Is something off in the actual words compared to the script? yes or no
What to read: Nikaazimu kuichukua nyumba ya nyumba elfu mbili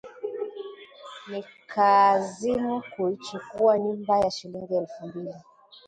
yes